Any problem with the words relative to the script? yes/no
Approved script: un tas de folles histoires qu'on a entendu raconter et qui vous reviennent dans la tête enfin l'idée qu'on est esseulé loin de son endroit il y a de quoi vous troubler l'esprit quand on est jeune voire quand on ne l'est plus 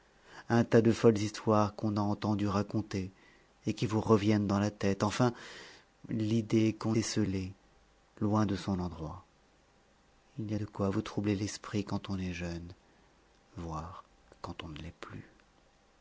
yes